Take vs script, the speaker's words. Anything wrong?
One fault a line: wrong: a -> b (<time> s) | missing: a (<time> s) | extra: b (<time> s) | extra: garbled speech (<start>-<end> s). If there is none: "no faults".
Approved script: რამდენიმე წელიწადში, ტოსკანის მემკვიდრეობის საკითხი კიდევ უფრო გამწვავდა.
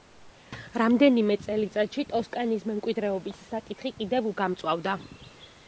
missing: უფრო (4.3 s)